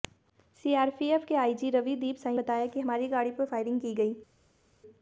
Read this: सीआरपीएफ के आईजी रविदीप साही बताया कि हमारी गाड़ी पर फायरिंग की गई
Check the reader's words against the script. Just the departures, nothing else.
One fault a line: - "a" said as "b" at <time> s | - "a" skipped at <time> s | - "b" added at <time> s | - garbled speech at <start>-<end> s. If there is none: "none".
none